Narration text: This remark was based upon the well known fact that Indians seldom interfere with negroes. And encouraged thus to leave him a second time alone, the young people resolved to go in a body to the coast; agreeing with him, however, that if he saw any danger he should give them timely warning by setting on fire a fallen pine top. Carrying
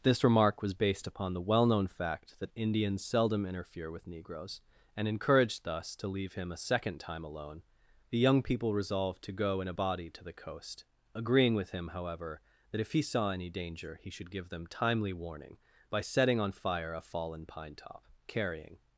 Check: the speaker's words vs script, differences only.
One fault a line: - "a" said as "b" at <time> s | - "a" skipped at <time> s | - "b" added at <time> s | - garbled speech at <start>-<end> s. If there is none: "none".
none